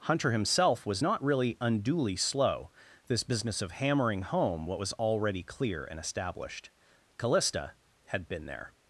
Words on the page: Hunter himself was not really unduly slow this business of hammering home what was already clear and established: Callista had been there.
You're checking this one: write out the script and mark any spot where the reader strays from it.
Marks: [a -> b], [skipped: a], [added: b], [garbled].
Hunter himself was not really unduly slow this business of hammering home what was already clear and established: Callista had been there.